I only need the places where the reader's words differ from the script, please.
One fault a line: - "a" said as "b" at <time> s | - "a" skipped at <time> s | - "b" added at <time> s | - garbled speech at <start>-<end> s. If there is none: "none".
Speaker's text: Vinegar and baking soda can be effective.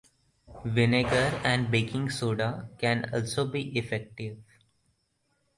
- "also" added at 3.1 s